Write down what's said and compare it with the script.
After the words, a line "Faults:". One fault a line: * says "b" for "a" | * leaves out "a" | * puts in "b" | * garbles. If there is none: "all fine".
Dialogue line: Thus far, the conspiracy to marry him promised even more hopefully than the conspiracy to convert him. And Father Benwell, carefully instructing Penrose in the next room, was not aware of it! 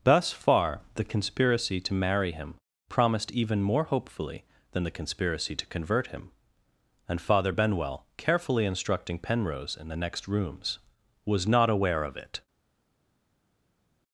Thus far, the conspiracy to marry him promised even more hopefully than the conspiracy to convert him. And Father Benwell, carefully instructing Penrose in the next rooms, was not aware of it!
Faults:
* says "rooms" for "room"